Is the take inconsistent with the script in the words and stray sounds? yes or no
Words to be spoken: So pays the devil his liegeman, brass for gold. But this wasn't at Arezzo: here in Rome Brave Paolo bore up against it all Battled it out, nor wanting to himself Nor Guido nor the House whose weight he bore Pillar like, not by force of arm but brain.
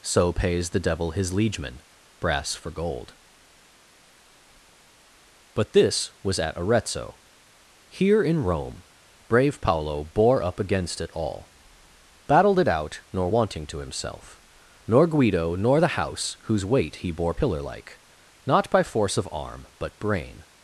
yes